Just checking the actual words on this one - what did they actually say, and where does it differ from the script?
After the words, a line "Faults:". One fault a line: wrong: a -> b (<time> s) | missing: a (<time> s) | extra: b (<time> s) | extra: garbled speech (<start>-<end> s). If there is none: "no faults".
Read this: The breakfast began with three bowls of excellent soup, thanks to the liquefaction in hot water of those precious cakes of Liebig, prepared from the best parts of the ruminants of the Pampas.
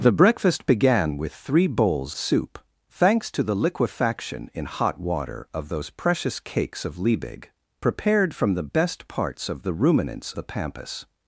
The breakfast began with three bowls soup, thanks to the liquefaction in hot water of those precious cakes of Liebig, prepared from the best parts of the ruminants the Pampas.
Faults:
missing: of excellent (2.1 s)
missing: of (10.3 s)